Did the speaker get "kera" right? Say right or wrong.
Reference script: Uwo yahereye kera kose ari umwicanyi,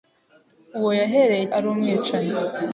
wrong